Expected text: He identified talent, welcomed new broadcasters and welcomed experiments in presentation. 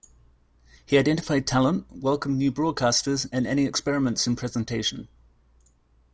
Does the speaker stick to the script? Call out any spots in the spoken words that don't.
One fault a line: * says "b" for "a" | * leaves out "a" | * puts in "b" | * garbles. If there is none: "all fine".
* says "any" for "welcomed"